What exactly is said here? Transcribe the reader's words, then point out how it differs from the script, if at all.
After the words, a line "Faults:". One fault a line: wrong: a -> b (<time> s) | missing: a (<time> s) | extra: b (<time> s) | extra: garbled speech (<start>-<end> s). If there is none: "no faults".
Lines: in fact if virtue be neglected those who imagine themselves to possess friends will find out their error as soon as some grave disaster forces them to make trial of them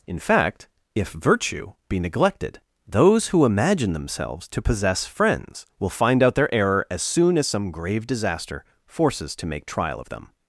in fact if virtue be neglected those who imagine themselves to possess friends will find out their error as soon as some grave disaster forces to make trial of them
Faults:
missing: them (9.4 s)